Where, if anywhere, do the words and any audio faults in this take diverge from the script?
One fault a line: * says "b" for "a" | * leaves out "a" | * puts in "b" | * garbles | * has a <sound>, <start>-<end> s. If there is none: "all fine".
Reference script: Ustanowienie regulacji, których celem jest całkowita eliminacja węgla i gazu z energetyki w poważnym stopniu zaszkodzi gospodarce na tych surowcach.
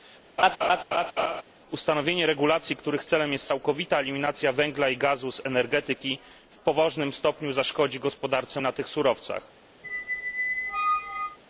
* has a laugh, 0.4-1.4 s
* has a squeak, 9.8-11.4 s